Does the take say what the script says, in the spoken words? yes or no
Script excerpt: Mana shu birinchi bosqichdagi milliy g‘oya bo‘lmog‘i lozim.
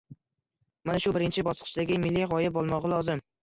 yes